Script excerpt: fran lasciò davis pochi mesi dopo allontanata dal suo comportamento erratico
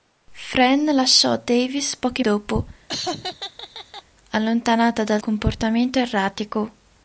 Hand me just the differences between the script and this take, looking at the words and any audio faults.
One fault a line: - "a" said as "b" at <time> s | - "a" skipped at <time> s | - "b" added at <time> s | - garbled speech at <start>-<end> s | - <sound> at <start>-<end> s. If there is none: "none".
- "mesi" skipped at 2.2 s
- laugh at 2.9-4.0 s
- "suo" skipped at 5.2 s